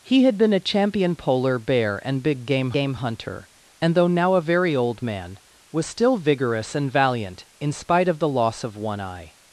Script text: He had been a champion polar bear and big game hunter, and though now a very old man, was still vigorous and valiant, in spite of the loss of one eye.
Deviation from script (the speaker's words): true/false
true